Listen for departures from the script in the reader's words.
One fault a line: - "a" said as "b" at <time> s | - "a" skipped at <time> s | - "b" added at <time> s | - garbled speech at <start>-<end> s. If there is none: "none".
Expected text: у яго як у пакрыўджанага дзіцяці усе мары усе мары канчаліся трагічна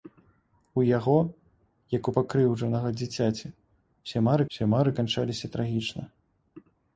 none